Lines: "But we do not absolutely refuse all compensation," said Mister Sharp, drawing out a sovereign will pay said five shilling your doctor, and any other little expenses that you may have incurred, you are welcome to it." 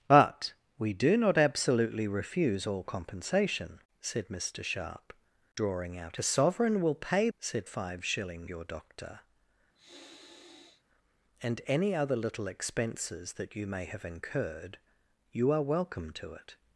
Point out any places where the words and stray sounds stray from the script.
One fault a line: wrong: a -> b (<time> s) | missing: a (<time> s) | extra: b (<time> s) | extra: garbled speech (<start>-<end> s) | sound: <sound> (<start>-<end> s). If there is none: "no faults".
sound: sniff (9.7-10.8 s)